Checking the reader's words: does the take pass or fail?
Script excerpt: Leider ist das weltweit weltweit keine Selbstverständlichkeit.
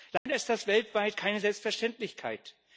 fail